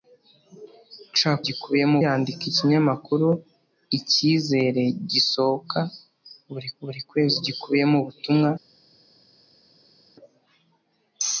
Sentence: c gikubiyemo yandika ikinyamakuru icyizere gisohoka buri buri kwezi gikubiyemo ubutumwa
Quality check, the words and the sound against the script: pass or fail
pass